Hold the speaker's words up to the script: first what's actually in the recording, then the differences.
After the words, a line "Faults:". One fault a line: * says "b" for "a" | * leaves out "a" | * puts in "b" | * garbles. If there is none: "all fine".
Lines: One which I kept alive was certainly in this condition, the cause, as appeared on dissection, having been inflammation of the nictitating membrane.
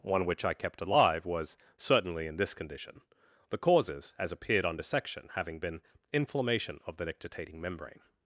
One which I kept alive was certainly in this condition, the causes, as appeared on dissection, having been inflammation of the nictitating membrane.
Faults:
* says "causes" for "cause"